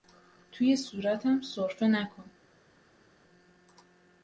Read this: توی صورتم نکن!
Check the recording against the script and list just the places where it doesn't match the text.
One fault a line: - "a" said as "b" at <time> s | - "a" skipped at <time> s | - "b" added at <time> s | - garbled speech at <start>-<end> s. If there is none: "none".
- "سرفه" added at 1.4 s